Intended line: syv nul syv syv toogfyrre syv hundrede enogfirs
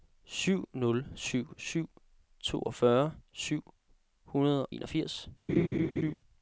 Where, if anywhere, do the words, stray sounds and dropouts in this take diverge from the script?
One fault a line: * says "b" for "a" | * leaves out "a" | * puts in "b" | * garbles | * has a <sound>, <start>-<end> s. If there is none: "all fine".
* has a laugh, 5.5-6.1 s